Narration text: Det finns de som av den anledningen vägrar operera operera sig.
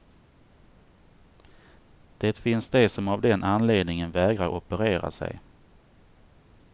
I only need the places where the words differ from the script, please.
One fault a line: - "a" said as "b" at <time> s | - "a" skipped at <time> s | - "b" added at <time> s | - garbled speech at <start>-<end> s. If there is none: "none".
- "operera" skipped at 5.1 s